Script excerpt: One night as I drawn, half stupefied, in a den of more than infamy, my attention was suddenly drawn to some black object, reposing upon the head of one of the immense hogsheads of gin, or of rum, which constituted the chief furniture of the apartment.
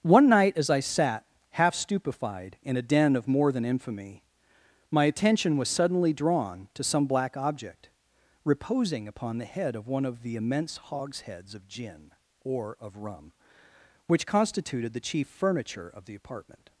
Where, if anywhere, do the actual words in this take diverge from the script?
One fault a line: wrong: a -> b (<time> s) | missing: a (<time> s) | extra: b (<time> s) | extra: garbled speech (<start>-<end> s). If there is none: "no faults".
wrong: drawn -> sat (0.8 s)